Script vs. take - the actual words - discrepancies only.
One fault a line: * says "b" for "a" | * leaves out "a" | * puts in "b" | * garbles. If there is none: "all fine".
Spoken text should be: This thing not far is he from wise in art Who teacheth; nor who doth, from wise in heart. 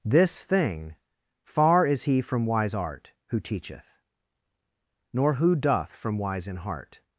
* leaves out "not"
* leaves out "in"